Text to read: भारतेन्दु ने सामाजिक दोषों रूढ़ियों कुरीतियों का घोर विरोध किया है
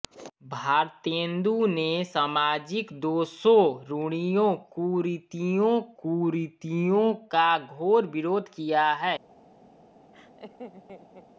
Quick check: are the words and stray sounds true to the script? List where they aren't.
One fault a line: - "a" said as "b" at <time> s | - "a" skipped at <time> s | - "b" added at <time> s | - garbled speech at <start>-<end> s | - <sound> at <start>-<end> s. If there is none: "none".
- "कुरीतियों" added at 6.0 s
- laugh at 10.1-11.3 s